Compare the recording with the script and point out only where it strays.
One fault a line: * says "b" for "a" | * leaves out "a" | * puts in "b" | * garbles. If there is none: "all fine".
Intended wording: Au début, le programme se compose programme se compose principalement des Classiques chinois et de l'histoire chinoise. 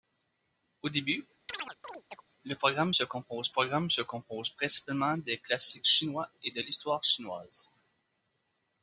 all fine